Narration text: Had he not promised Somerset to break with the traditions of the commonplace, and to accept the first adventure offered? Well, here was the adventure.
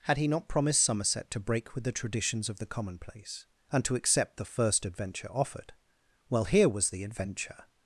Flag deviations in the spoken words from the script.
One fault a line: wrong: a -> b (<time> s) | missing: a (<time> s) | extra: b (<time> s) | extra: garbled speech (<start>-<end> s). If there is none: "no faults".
no faults